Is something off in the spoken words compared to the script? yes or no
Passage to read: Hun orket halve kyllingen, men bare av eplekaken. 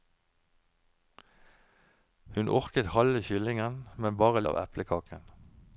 no